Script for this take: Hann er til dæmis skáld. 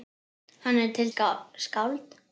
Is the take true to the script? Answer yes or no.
no